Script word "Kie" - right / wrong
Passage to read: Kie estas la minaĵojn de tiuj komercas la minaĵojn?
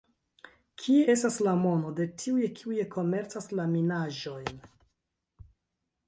right